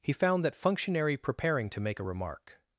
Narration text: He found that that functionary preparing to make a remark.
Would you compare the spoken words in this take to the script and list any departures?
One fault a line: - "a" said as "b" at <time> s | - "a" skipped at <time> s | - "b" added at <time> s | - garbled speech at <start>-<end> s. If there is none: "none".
- "that" skipped at 0.6 s